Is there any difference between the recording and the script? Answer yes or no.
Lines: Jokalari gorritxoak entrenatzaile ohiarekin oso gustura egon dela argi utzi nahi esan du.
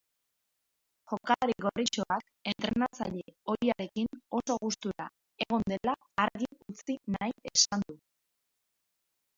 no